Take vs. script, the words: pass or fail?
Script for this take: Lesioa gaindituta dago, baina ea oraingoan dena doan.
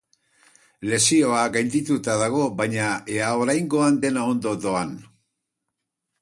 fail